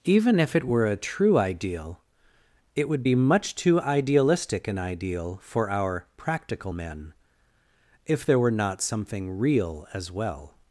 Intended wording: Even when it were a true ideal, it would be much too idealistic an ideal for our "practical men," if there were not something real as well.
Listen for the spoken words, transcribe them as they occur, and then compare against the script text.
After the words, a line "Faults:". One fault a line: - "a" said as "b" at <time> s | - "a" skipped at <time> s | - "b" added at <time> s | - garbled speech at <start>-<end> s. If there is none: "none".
Even if it were a true ideal, it would be much too idealistic an ideal for our "practical men," if there were not something real as well.
Faults:
- "when" said as "if" at 0.4 s